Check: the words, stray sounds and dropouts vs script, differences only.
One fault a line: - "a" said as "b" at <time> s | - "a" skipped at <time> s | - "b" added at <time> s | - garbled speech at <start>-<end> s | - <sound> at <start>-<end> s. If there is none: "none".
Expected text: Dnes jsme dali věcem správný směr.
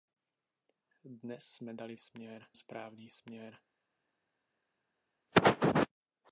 - "věcem" said as "směr" at 2.0 s